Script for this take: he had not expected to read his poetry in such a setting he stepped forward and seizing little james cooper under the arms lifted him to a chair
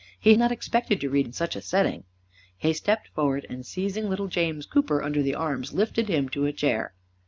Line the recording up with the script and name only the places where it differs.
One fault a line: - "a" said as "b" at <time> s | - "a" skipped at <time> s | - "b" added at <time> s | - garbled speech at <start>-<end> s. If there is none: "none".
- "had" skipped at 0.3 s
- "his poetry" skipped at 1.3 s